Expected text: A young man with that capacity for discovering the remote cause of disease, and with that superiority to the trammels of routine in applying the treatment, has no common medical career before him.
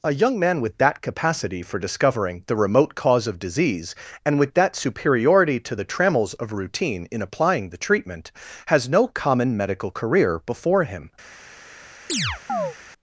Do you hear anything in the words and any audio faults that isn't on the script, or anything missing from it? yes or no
yes